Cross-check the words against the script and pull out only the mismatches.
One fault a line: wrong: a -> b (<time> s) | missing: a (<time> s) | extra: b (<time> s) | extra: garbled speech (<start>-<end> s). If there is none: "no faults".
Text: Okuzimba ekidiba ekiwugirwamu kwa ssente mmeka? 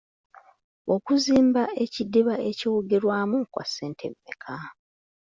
no faults